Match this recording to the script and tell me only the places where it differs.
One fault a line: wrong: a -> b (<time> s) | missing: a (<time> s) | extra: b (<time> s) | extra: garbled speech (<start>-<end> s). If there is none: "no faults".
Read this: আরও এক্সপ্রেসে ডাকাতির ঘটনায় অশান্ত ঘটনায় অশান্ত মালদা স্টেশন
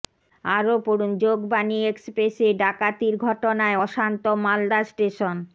extra: পড়ুন যোগবাণী (0.9 s)
missing: ঘটনায় অশান্ত (4.2 s)